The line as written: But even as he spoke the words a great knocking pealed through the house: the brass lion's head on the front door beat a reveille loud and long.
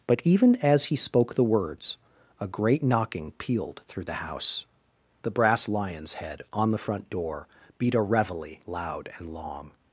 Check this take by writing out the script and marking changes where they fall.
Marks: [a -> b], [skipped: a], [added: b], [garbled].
But even as he spoke the words a great knocking pealed through the house: the brass lion's head on the front door beat a reveille loud and long.